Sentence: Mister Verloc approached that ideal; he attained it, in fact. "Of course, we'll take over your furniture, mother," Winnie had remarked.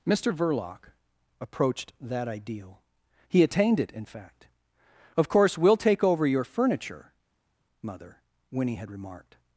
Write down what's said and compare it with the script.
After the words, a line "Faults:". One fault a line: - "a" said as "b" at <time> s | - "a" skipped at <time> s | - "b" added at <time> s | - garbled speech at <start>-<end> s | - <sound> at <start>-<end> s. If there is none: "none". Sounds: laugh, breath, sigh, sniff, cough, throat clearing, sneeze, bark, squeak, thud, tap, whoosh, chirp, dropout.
Mister Verloc approached that ideal; he attained it, in fact. "Of course, we'll take over your furniture, mother," Winnie had remarked.
Faults:
none